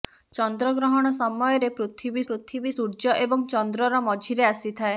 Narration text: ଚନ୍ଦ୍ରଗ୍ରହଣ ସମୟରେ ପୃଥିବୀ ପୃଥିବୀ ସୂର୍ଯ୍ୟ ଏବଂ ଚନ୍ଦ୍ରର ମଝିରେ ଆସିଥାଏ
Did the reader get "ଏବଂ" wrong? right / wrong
right